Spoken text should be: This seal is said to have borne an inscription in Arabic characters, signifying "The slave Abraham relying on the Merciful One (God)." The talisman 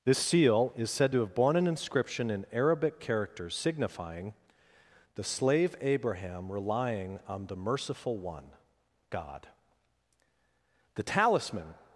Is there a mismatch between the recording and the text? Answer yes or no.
no